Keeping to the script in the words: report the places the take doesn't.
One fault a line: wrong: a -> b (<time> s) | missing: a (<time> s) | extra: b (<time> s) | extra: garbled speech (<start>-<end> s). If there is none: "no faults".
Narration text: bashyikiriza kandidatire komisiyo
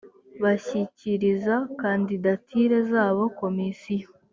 extra: zabo (2.9 s)